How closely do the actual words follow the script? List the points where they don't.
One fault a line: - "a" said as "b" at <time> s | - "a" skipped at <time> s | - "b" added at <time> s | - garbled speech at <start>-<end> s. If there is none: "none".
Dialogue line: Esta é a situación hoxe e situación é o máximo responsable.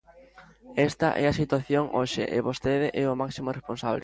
- "situación" said as "vostede" at 2.5 s